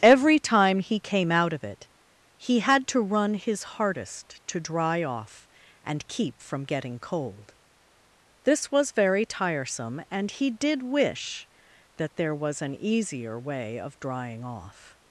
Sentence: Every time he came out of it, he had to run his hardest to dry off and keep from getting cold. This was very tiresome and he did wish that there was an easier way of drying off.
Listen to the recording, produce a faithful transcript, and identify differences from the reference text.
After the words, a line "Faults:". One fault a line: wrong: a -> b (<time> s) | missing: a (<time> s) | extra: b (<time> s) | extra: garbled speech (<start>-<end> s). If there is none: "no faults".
Every time he came out of it, he had to run his hardest to dry off and keep from getting cold. This was very tiresome and he did wish that there was an easier way of drying off.
Faults:
no faults